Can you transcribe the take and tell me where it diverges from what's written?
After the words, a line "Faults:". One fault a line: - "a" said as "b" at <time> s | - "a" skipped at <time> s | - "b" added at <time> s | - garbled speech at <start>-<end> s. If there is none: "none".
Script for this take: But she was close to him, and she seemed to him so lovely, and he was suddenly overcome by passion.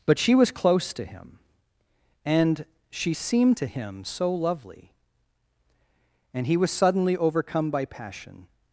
But she was close to him, and she seemed to him so lovely, and he was suddenly overcome by passion.
Faults:
none